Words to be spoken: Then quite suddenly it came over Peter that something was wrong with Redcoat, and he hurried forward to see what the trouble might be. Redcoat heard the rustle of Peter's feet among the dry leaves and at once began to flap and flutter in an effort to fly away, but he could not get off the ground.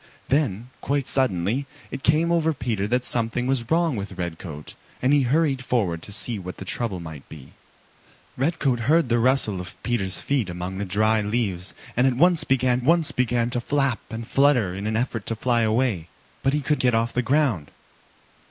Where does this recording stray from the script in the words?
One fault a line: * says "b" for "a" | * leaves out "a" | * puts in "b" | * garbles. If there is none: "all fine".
* puts in "once began"
* leaves out "not"